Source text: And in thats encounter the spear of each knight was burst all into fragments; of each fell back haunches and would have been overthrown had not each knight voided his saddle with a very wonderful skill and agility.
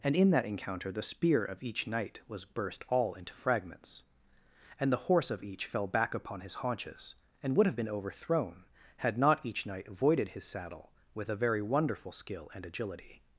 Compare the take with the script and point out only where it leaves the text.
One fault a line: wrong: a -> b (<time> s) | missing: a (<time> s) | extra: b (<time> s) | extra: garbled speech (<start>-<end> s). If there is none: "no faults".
wrong: thats -> that (0.3 s)
extra: and the horse (4.8 s)
extra: upon his (6.2 s)